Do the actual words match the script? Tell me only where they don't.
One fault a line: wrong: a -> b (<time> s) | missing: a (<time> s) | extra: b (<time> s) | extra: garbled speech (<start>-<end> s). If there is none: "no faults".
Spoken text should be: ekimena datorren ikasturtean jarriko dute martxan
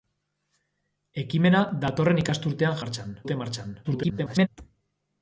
wrong: jarriko -> martxan (2.8 s)
extra: garbled speech (3.8-4.5 s)